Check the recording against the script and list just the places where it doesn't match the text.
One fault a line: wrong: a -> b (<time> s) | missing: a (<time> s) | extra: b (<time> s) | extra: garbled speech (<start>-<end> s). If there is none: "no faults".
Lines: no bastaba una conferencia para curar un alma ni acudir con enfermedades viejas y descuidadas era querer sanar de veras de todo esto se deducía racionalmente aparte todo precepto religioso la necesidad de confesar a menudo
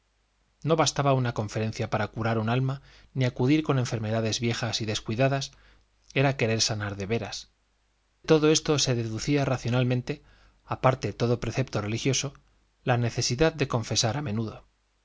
missing: de (7.5 s)